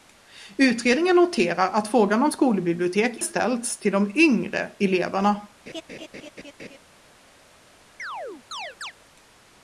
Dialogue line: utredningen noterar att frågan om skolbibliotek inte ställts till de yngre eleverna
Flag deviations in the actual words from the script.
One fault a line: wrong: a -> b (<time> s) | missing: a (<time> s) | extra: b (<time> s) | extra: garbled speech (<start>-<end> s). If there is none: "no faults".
missing: inte (3.2 s)